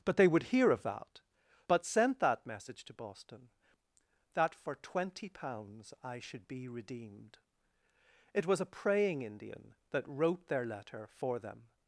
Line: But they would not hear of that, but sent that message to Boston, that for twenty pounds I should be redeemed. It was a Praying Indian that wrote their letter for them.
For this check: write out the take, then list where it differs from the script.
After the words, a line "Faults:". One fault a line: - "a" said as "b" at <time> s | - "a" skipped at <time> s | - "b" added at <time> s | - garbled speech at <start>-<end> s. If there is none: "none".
But they would hear of that, but sent that message to Boston, that for twenty pounds I should be redeemed. It was a Praying Indian that wrote their letter for them.
Faults:
- "not" skipped at 0.4 s